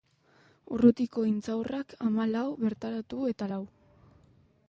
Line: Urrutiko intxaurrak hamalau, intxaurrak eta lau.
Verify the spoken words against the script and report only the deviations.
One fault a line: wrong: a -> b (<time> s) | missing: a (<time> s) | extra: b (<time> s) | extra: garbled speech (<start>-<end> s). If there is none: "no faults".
wrong: intxaurrak -> bertaratu (2.6 s)